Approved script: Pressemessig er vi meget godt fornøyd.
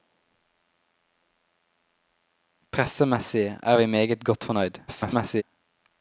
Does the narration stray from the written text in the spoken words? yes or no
yes